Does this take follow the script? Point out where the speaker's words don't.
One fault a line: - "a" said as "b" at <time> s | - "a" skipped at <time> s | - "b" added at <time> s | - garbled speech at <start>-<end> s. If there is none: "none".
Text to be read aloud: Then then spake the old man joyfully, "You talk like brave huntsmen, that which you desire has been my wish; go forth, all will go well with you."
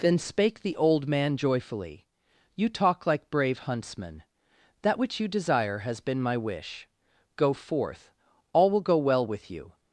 - "then" skipped at 0.2 s